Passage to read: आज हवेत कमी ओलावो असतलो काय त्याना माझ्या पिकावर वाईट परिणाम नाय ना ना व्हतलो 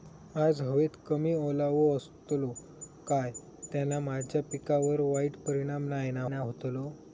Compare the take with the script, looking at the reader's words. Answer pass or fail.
pass